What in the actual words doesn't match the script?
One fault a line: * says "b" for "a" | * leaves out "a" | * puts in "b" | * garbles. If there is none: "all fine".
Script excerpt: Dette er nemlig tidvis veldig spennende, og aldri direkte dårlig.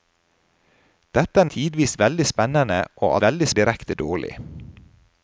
* leaves out "nemlig"
* says "veldig" for "aldri"